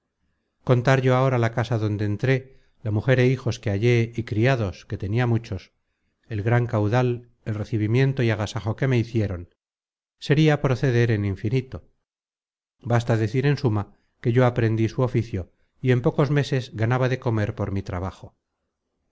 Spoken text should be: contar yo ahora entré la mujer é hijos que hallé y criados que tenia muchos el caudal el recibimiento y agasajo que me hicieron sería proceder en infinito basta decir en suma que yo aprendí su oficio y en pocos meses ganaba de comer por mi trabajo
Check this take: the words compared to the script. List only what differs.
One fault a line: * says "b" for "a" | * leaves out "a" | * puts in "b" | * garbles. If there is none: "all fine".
* puts in "la casa donde"
* puts in "gran"